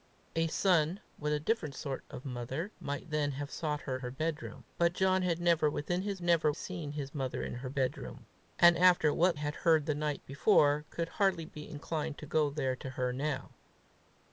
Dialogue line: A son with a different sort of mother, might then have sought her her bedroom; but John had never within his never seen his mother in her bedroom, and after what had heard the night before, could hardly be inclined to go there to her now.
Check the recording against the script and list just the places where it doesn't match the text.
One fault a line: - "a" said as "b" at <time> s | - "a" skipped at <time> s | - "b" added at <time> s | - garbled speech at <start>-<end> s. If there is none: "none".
none